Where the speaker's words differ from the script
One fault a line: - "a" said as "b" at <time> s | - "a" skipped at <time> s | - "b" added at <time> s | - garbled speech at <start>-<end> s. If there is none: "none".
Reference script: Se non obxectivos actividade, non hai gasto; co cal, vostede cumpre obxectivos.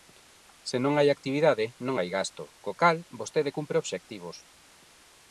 - "obxectivos" said as "hai" at 1.0 s